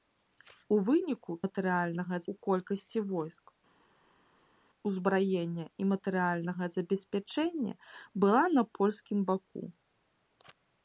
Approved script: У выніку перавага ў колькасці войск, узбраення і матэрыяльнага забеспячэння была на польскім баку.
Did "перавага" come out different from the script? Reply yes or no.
yes